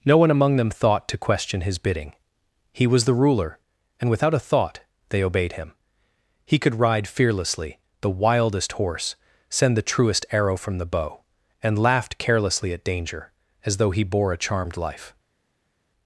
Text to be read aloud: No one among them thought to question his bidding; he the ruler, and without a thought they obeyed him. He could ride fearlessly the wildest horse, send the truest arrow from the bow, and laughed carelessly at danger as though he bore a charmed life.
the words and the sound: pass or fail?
fail